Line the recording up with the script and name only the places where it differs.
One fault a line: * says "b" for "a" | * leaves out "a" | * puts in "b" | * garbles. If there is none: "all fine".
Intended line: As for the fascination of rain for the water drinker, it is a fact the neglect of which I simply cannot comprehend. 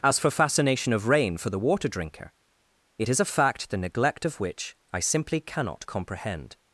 * leaves out "the"